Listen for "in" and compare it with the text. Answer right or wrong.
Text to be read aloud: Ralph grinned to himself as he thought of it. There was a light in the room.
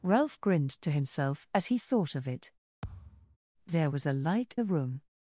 wrong